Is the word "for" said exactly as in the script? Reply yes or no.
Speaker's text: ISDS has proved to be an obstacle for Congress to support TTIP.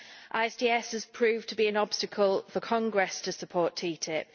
yes